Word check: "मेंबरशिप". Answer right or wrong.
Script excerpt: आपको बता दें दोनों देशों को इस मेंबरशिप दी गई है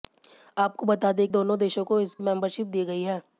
right